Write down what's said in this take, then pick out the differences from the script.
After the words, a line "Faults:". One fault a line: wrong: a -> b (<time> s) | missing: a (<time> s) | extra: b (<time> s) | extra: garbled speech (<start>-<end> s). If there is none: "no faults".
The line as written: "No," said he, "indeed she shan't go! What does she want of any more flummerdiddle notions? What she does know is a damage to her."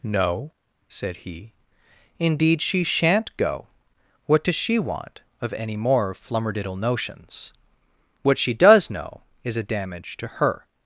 "No," said he, "indeed she shan't go! What does she want of any more flummerdiddle notions? What she does know is a damage to her."
Faults:
no faults